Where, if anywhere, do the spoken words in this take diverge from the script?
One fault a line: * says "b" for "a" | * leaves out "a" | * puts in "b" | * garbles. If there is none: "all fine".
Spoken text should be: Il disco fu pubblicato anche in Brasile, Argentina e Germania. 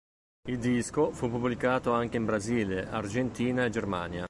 all fine